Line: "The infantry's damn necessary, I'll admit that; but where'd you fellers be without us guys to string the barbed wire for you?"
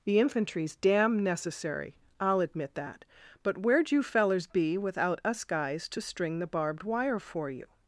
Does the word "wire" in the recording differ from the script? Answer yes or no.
no